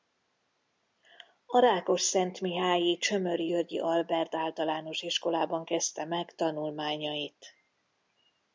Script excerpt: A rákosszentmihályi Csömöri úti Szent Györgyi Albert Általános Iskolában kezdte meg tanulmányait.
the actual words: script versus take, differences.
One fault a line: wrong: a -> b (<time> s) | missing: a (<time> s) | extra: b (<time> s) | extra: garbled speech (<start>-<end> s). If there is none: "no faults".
missing: úti Szent (3.5 s)